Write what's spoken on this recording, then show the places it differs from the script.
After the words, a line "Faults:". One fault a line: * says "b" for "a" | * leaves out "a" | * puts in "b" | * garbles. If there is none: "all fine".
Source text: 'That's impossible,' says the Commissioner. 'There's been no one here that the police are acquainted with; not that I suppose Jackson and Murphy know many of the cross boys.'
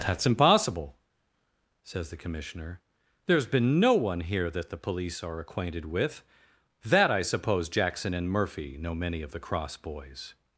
'That's impossible,' says the Commissioner. 'There's been no one here that the police are acquainted with; that I suppose Jackson and Murphy know many of the cross boys.'
Faults:
* leaves out "not"